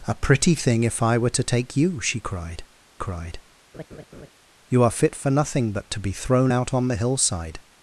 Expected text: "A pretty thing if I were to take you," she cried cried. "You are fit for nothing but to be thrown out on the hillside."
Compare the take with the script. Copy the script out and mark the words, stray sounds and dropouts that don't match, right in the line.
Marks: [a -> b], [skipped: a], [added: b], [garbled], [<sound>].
"A pretty thing if I were to take you," she cried cried. [laugh] "You are fit for nothing but to be thrown out on the hillside."